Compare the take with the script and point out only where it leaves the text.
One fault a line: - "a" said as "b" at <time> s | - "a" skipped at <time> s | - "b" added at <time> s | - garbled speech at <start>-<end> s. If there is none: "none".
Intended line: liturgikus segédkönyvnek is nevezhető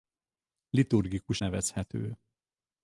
- "segédkönyvnek is" skipped at 1.4 s